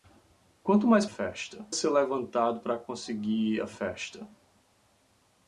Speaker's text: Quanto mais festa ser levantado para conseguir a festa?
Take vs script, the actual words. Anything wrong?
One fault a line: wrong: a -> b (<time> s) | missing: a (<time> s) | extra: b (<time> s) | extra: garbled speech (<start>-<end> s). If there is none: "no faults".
no faults